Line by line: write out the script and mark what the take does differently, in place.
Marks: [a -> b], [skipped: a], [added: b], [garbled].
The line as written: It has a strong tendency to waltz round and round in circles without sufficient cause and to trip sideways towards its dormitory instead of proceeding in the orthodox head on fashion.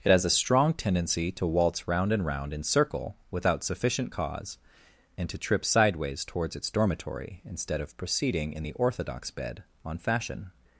It has a strong tendency to waltz round and round in [circles -> circle] without sufficient cause and to trip sideways towards its dormitory instead of proceeding in the orthodox [head -> bed] on fashion.